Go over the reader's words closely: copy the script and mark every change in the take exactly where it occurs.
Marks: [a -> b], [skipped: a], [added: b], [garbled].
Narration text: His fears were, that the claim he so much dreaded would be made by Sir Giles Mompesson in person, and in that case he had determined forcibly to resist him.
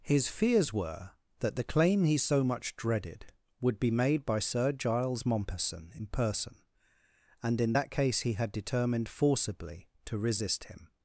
His fears were, that the claim he so much dreaded would be made by Sir Giles Mompesson in person, and in that case he had determined forcibly to resist him.